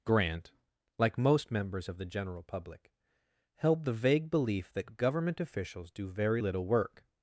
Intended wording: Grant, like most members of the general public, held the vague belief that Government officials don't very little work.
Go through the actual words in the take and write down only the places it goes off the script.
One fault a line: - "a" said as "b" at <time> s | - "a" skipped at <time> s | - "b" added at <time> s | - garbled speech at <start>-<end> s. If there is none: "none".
- "don't" said as "do" at 5.9 s